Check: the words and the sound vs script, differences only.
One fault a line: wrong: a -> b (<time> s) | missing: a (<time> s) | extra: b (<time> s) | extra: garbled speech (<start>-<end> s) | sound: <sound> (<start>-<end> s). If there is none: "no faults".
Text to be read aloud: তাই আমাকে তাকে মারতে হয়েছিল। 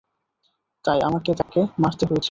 sound: dropout (1.4-1.5 s)